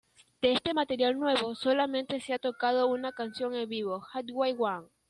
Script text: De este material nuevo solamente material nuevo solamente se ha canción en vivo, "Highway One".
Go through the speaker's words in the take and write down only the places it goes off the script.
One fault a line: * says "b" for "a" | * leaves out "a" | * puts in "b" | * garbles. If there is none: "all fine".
* says "se ha tocado una" for "material nuevo solamente se ha"